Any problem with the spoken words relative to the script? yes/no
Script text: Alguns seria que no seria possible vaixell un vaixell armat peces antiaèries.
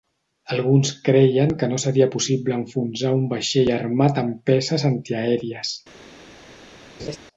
yes